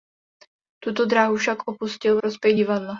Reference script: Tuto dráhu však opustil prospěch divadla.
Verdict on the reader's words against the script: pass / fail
pass